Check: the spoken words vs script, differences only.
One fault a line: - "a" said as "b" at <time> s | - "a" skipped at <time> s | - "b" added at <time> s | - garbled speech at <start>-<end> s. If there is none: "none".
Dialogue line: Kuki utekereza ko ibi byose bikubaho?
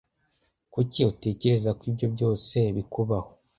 - "ibi" said as "ibyo" at 1.9 s